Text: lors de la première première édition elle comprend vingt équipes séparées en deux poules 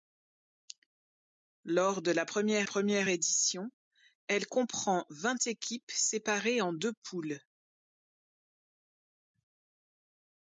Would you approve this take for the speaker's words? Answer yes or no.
yes